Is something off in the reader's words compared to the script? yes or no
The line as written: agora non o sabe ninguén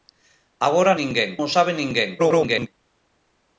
yes